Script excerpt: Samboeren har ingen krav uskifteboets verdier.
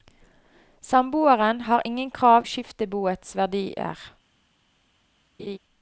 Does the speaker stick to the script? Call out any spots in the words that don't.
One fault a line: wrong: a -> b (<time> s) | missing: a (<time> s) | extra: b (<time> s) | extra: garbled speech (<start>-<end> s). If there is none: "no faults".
no faults